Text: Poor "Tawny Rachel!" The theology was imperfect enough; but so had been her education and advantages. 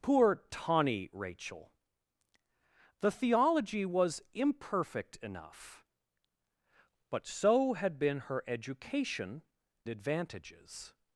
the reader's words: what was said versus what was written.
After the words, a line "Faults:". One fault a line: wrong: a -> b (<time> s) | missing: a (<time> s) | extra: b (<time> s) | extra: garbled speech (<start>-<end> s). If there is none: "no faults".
Poor "Tawny Rachel!" The theology was imperfect enough; but so had been her education advantages.
Faults:
missing: and (9.4 s)